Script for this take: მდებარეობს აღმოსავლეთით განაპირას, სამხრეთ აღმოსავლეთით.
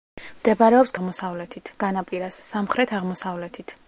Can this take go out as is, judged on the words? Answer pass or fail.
pass